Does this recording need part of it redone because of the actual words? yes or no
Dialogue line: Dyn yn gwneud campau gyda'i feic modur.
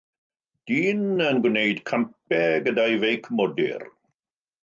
no